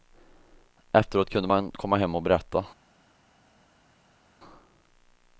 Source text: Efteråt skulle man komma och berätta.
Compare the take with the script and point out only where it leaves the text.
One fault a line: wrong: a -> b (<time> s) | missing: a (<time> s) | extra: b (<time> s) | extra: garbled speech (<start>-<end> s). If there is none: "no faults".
wrong: skulle -> kunde (1.3 s)
extra: hem (2.0 s)